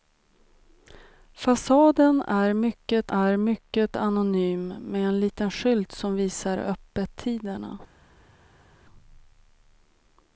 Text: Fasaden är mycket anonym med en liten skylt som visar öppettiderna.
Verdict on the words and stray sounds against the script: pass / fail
fail